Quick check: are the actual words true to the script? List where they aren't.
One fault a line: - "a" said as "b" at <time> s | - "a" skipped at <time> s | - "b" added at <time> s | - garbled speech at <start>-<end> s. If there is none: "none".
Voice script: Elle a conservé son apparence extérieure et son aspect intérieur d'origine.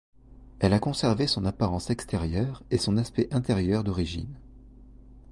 none